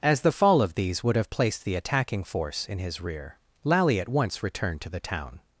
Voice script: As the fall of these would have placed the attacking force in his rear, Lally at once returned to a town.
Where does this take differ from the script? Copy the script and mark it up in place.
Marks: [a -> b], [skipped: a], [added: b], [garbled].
As the fall of these would have placed the attacking force in his rear, Lally at once returned to [a -> the] town.